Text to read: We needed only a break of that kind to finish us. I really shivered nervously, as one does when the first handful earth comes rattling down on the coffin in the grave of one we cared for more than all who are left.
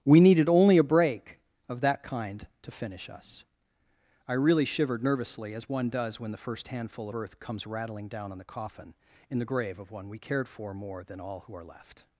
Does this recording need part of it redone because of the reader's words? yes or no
no